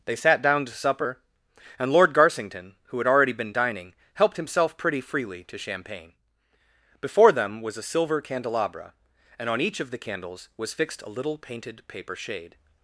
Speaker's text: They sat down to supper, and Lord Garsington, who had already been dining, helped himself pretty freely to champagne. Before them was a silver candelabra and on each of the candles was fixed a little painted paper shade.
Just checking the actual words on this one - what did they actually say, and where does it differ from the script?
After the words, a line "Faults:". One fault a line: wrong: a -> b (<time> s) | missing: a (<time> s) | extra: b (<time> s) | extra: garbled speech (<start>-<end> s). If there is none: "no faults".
They sat down to supper, and Lord Garsington, who had already been dining, helped himself pretty freely to champagne. Before them was a silver candelabra and on each of the candles was fixed a little painted paper shade.
Faults:
no faults